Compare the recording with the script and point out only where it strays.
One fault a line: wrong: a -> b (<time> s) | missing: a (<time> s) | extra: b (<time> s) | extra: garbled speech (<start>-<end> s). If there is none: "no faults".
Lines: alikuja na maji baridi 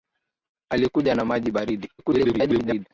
extra: garbled speech (2.0-2.9 s)